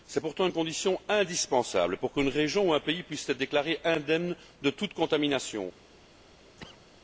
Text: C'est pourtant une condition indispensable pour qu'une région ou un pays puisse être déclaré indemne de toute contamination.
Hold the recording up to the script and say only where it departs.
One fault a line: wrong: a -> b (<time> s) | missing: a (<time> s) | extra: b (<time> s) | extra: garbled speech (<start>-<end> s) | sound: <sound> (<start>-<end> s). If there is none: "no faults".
sound: cough (6.6-6.9 s)